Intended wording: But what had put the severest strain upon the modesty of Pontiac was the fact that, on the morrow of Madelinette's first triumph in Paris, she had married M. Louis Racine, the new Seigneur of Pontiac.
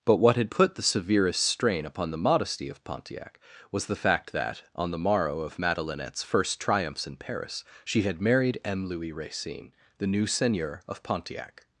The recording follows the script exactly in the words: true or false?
false